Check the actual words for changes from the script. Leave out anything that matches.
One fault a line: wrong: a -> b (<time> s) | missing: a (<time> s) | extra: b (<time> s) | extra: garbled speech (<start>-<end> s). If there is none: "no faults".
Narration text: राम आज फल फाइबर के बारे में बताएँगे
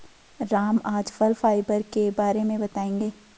no faults